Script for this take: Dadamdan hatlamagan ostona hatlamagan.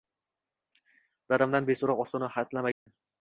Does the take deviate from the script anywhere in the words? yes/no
yes